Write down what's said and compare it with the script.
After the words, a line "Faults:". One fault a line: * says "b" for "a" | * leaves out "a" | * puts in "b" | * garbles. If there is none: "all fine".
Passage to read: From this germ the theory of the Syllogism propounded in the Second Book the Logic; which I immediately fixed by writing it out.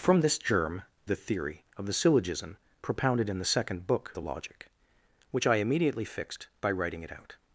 From this germ the theory of the Syllogism propounded in the Second Book the Logic; which I immediately fixed by writing it out.
Faults:
all fine